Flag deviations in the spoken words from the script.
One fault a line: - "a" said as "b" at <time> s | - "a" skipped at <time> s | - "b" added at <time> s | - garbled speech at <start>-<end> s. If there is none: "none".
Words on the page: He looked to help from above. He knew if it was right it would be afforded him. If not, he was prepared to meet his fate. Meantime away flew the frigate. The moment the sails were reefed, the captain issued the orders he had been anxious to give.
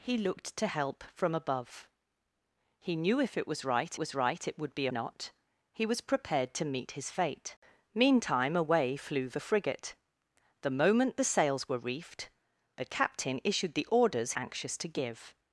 - "was right" added at 4.0 s
- "afforded him If" skipped at 4.9 s
- "he had been" skipped at 14.3 s